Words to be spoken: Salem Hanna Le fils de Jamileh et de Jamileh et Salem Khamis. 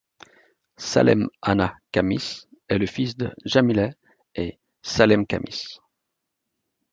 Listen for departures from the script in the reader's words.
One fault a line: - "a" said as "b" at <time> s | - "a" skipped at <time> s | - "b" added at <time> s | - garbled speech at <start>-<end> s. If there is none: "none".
- "Khamis est" added at 1.9 s
- "de Jamileh et" skipped at 4.6 s